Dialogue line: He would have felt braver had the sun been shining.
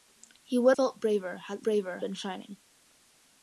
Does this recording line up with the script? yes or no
no